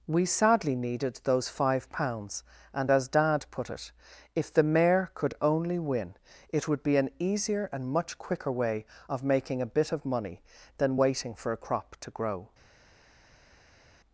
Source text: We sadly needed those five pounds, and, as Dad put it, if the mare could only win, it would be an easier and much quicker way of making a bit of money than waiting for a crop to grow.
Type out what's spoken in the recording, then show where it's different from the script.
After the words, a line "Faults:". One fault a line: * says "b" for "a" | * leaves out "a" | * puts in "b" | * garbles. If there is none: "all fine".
We sadly needed those five pounds, and, as Dad put it, if the mare could only win, it would be an easier and much quicker way of making a bit of money than waiting for a crop to grow.
Faults:
all fine